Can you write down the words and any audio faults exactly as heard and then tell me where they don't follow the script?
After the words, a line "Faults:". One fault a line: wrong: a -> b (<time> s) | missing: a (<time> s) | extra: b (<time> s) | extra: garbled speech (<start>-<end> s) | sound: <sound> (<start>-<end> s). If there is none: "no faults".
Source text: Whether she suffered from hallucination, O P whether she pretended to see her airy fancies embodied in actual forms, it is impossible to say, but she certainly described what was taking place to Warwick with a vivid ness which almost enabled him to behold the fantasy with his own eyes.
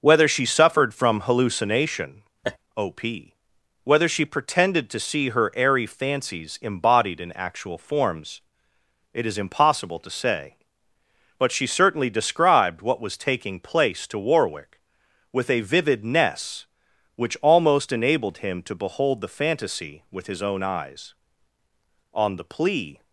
Whether she suffered from hallucination, O P whether she pretended to see her airy fancies embodied in actual forms, it is impossible to say, but she certainly described what was taking place to Warwick with a vivid ness which almost enabled him to behold the fantasy with his own eyes. On the plea
Faults:
sound: laugh (2.4-2.6 s)
extra: On the plea (22.1 s)